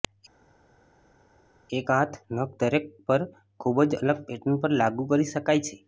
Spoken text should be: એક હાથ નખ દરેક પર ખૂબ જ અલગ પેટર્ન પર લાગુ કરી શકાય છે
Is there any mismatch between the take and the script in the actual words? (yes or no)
no